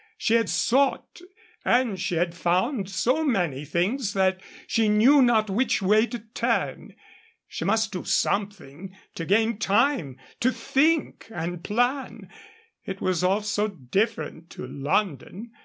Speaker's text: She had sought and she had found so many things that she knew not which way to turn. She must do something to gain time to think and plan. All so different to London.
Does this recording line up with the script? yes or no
no